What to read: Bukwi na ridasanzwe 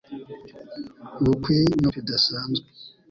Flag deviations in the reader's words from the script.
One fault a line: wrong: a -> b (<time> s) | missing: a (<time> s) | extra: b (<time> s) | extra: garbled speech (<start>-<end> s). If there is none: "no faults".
no faults